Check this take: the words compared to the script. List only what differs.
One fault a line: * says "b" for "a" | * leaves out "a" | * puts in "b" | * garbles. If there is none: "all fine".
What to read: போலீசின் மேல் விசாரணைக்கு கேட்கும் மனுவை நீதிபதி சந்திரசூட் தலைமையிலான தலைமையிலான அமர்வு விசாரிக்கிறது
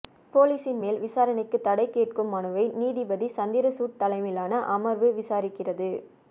* puts in "தடை"
* leaves out "தலைமையிலான"